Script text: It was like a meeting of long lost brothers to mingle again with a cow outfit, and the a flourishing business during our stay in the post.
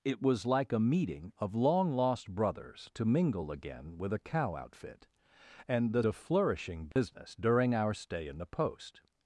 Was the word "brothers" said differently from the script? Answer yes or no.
no